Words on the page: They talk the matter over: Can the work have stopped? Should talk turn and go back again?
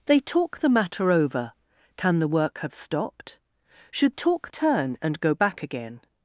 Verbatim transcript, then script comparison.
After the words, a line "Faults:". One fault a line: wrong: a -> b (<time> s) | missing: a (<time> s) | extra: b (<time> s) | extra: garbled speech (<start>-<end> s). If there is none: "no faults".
They talk the matter over: Can the work have stopped? Should talk turn and go back again?
Faults:
no faults